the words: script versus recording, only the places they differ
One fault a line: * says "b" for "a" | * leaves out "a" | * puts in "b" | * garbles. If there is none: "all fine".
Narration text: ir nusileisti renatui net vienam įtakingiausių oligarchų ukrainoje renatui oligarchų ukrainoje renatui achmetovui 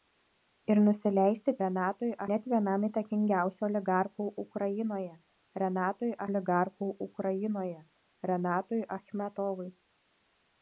all fine